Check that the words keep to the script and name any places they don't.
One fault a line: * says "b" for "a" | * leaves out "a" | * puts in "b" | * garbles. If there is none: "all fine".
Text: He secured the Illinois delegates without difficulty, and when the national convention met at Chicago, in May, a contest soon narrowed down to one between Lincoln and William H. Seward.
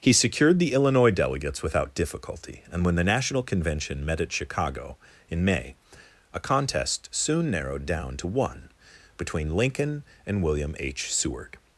all fine